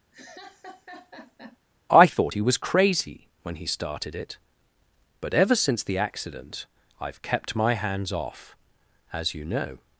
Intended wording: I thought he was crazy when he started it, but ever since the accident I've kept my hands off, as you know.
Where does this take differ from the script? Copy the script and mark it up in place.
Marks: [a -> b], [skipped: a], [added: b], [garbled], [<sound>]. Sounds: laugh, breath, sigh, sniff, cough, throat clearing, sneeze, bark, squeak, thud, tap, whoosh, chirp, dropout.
[laugh] I thought he was crazy when he started it, but ever since the accident I've kept my hands off, as you know.